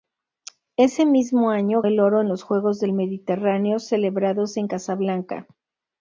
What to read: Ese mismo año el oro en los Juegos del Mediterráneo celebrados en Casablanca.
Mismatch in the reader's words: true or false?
false